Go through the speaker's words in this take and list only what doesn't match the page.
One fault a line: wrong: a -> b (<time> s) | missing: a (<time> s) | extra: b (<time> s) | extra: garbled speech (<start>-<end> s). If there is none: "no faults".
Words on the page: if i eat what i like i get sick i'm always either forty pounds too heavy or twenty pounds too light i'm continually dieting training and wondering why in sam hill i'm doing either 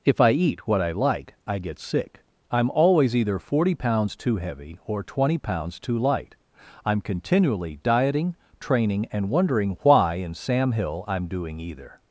no faults